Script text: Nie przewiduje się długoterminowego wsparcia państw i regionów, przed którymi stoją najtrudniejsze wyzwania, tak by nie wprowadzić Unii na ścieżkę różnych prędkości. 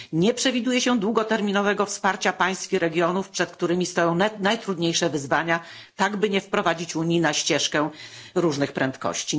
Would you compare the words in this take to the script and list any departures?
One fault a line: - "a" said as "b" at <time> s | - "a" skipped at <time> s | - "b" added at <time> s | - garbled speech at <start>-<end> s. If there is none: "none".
none